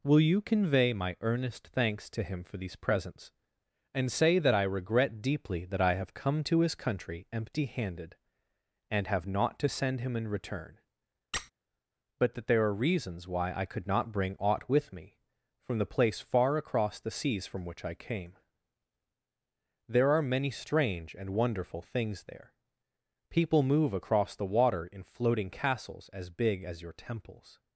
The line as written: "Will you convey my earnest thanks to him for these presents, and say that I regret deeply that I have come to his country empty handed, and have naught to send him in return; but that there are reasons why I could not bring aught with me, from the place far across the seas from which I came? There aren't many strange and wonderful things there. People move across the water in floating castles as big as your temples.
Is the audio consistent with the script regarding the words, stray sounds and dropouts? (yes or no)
no